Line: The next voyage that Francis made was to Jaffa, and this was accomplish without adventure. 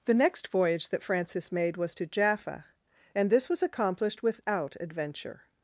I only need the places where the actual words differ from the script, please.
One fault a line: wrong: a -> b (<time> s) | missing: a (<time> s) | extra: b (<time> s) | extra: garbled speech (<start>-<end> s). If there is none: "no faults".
wrong: accomplish -> accomplished (3.6 s)